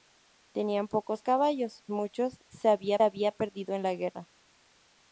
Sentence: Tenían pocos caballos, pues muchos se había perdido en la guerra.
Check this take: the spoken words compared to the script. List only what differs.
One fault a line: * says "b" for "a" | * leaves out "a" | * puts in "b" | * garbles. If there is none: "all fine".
* leaves out "pues"
* puts in "había"